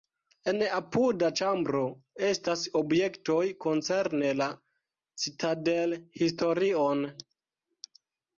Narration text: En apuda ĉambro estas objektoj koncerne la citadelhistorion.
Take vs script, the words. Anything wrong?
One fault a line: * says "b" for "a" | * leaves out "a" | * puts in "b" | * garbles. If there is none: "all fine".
all fine